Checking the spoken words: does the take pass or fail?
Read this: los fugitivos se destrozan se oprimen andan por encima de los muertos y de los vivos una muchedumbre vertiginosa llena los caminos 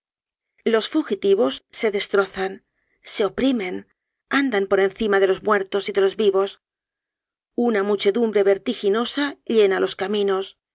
pass